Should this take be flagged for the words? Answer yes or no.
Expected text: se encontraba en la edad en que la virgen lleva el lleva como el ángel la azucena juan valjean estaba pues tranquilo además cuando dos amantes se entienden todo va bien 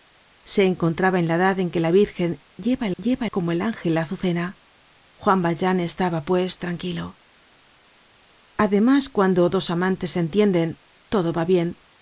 no